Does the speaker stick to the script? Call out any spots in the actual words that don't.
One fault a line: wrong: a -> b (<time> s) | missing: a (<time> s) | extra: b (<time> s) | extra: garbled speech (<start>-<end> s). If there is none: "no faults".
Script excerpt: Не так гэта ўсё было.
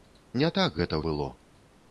missing: ўсё (1.0 s)